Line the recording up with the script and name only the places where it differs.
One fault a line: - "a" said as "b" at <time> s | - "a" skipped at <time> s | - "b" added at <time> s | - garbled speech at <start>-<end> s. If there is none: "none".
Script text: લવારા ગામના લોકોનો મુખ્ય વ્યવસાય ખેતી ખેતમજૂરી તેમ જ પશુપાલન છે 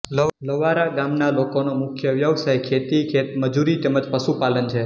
none